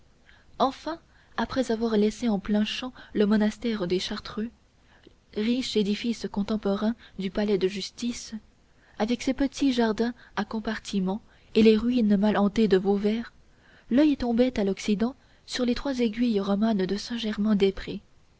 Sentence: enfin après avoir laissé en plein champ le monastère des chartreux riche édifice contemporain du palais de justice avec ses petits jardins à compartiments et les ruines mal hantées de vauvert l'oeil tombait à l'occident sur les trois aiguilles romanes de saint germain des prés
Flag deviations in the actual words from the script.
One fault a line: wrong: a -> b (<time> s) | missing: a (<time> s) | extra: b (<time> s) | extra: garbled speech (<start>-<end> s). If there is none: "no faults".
no faults